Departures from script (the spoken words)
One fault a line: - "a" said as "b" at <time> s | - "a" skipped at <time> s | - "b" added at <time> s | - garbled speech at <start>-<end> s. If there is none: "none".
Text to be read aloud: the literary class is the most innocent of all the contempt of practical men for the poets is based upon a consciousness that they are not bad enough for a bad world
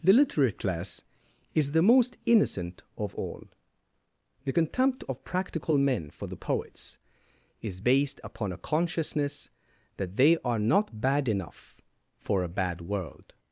none